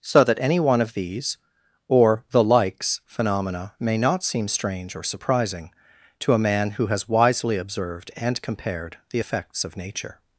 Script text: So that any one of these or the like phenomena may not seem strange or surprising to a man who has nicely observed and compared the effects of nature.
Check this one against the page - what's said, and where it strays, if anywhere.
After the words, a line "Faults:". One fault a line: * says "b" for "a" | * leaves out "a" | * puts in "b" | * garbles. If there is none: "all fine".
So that any one of these or the likes phenomena may not seem strange or surprising to a man who has wisely observed and compared the effects of nature.
Faults:
* says "likes" for "like"
* says "wisely" for "nicely"